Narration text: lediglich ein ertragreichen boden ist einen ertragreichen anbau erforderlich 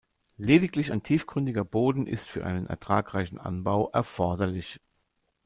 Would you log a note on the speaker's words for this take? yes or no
yes